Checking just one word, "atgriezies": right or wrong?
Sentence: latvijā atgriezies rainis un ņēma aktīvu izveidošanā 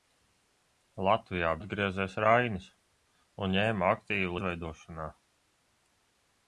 right